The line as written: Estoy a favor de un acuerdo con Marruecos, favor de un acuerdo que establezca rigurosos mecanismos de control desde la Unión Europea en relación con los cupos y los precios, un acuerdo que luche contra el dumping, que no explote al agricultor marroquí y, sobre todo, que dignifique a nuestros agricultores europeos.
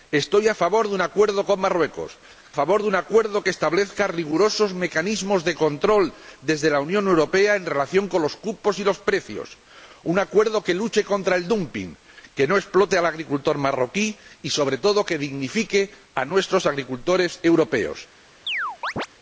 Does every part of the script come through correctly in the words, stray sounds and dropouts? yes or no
no